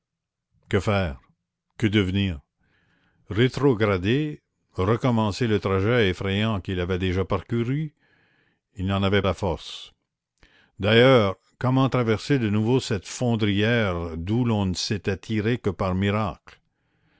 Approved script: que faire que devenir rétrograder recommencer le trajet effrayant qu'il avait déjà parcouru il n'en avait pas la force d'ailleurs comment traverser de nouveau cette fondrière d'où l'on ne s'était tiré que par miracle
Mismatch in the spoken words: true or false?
true